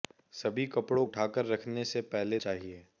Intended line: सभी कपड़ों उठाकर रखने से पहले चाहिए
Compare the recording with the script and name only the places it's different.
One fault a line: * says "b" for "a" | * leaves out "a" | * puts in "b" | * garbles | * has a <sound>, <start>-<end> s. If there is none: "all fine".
all fine